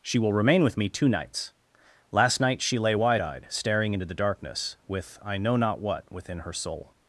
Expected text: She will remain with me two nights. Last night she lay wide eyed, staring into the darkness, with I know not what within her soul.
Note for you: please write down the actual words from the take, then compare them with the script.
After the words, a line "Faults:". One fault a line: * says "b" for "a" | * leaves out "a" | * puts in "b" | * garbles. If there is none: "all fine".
She will remain with me two nights. Last night she lay wide eyed, staring into the darkness, with I know not what within her soul.
Faults:
all fine